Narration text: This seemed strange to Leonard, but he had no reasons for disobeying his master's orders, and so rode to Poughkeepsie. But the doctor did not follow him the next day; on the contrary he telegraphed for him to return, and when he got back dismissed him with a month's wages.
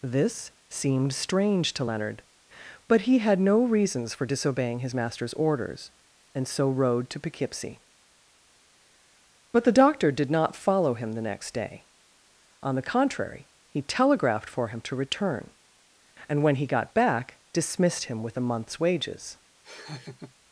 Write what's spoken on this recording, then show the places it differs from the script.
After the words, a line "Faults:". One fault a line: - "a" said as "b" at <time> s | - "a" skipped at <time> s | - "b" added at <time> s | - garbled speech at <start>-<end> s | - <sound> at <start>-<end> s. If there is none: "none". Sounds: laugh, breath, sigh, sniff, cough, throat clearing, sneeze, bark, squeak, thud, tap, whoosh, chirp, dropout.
This seemed strange to Leonard, but he had no reasons for disobeying his master's orders, and so rode to Poughkeepsie. But the doctor did not follow him the next day; on the contrary he telegraphed for him to return, and when he got back dismissed him with a month's wages.
Faults:
- laugh at 19.6-20.3 s